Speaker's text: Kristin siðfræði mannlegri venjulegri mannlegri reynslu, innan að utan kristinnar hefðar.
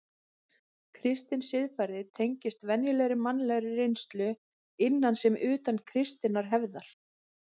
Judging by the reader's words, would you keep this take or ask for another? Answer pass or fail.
fail